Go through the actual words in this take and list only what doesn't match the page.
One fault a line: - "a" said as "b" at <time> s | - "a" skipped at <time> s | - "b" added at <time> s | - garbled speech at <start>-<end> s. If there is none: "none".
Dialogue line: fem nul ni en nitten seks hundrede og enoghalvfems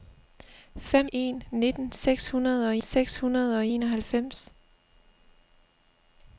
- "nul ni en nitten" said as "en nitten seks hundrede og" at 1.1 s